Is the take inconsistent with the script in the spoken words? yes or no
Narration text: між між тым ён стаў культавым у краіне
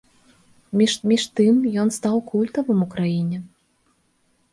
no